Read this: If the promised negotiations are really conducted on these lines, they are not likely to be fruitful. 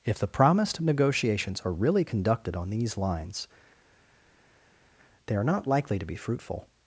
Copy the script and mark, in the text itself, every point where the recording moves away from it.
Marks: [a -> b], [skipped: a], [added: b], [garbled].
If the promised negotiations are really conducted on these lines, they are not likely to be fruitful.